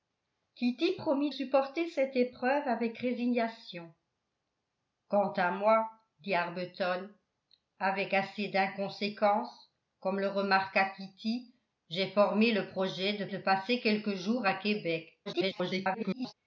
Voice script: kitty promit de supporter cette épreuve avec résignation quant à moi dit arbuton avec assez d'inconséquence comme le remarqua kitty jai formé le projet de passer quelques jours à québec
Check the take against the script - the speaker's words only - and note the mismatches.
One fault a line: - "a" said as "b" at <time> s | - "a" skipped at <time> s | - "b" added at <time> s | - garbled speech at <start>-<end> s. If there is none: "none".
- "de" skipped at 1.3 s
- "de" added at 13.2 s
- garbled speech at 15.3-16.3 s